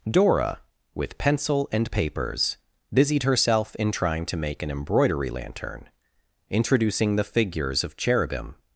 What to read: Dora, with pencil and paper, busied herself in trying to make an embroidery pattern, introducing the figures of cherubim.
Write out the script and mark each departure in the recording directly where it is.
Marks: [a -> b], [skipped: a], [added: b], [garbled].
Dora, with pencil and [paper, -> papers] busied herself in trying to make an embroidery [pattern, -> lantern] introducing the figures of cherubim.